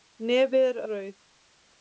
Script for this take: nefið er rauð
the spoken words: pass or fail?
pass